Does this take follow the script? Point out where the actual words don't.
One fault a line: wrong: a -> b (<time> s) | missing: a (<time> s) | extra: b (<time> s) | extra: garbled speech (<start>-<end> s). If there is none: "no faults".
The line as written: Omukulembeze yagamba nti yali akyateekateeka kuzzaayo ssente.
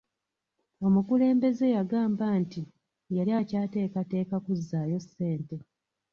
no faults